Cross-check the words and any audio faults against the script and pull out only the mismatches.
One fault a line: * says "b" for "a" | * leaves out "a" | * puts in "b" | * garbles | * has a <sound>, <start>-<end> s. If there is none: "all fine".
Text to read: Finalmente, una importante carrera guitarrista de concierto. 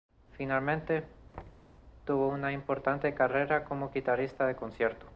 * has a thud, 1.3-1.7 s
* puts in "tuvo"
* puts in "como"